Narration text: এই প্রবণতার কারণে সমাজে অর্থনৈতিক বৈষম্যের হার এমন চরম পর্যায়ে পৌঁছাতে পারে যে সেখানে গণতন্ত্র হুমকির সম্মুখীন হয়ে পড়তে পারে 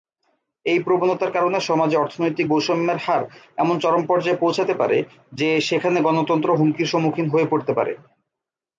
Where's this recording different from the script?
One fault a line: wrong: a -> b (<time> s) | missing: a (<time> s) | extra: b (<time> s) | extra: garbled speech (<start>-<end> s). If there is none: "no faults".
no faults